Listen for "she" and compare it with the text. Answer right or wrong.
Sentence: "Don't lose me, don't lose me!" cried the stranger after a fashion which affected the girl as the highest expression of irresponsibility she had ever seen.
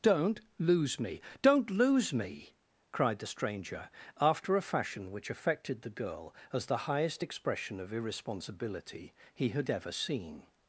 wrong